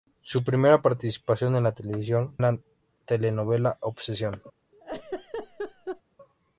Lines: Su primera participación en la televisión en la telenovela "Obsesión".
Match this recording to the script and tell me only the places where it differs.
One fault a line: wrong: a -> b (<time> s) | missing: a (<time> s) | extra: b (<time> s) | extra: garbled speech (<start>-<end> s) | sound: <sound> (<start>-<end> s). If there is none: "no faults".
sound: laugh (4.7-6.0 s)